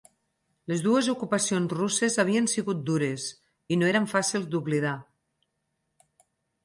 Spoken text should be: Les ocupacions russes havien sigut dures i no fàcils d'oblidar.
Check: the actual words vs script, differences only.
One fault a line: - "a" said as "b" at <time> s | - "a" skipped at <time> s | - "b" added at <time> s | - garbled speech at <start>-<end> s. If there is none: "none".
- "dues" added at 0.8 s
- "eren" added at 3.9 s